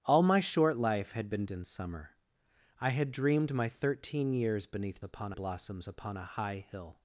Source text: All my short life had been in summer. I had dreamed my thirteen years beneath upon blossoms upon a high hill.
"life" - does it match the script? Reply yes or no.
yes